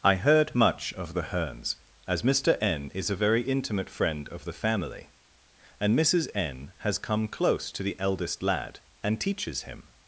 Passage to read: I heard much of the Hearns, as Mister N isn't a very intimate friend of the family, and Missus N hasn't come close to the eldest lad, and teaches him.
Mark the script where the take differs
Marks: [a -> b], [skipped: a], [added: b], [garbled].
I heard much of the Hearns, as Mister N [isn't -> is] a very intimate friend of the family, and Missus N [hasn't -> has] come close to the eldest lad, and teaches him.